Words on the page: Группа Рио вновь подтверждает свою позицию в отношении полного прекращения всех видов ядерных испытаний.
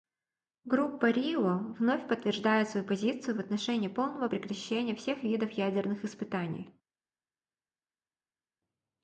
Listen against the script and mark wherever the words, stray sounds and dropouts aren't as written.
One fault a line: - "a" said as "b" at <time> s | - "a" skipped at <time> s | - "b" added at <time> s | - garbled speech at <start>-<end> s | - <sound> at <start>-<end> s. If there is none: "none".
none